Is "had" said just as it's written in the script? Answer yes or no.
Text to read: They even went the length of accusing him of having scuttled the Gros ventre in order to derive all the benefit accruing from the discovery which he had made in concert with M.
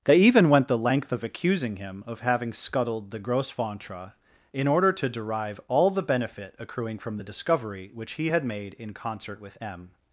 yes